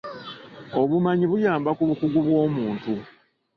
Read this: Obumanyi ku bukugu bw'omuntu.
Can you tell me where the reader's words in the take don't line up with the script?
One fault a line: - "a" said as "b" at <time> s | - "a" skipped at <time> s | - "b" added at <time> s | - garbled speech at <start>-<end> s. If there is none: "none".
- "buyamba" added at 1.3 s